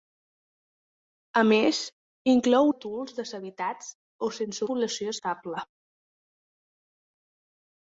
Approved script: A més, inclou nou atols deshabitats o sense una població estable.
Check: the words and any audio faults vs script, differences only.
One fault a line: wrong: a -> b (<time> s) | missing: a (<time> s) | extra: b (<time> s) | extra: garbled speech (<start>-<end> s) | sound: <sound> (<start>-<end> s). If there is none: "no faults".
missing: nou (2.7 s)
missing: una (4.7 s)